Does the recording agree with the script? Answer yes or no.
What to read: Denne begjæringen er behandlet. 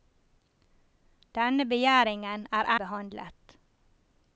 yes